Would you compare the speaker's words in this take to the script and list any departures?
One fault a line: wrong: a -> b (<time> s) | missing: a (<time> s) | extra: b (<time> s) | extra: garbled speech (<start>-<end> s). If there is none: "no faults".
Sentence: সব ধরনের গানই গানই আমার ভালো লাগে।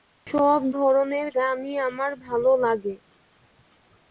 missing: গানই (1.7 s)